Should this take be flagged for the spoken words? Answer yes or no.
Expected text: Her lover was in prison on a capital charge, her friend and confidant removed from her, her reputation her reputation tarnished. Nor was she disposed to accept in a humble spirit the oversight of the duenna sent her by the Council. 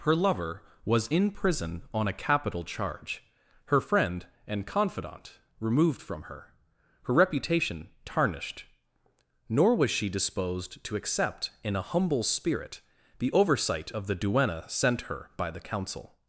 yes